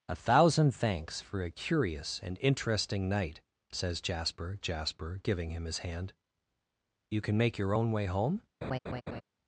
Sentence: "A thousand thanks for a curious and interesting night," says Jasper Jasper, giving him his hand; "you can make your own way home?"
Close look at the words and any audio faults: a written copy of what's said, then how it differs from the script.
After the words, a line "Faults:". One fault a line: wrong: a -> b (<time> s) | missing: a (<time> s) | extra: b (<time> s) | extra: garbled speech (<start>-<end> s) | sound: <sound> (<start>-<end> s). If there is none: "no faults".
"A thousand thanks for a curious and interesting night," says Jasper Jasper, giving him his hand; "you can make your own way home?"
Faults:
sound: laugh (8.6-9.2 s)